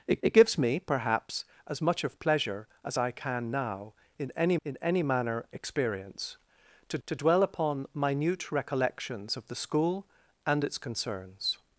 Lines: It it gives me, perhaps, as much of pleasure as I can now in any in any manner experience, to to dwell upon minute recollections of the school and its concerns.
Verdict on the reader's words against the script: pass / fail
pass